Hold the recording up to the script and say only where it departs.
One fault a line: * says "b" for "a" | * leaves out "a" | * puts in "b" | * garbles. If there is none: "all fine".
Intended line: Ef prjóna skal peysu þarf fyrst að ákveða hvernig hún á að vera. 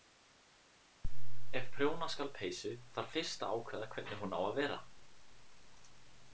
all fine